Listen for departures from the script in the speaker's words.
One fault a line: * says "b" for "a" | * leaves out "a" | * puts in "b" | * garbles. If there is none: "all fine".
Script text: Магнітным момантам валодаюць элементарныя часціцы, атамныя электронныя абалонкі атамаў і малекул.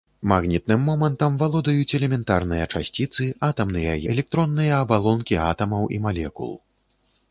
all fine